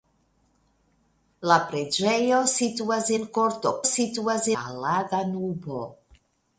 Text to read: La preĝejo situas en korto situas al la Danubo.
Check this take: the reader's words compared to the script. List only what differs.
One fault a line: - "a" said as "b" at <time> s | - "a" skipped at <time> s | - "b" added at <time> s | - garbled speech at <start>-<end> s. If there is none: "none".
none